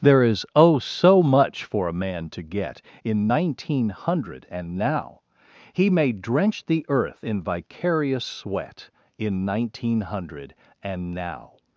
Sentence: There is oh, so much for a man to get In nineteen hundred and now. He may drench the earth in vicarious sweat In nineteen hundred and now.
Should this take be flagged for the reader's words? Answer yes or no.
no